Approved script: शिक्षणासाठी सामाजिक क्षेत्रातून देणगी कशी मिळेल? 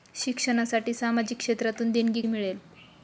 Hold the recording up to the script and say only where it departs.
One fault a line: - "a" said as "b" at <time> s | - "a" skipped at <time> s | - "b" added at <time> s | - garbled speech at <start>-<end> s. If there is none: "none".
- "कशी" skipped at 2.2 s